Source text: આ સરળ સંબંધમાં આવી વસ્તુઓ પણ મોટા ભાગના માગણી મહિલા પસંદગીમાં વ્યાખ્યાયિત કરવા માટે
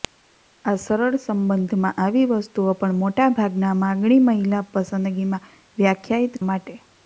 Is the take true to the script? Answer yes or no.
no